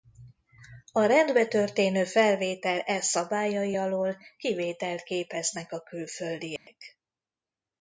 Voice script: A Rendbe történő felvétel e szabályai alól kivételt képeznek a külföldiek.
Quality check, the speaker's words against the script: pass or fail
pass